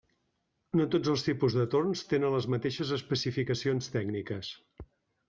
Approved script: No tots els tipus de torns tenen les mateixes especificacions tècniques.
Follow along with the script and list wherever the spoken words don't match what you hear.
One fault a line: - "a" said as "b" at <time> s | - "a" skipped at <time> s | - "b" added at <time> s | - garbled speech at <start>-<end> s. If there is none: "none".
none